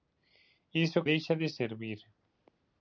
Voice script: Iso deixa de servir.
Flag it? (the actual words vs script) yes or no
no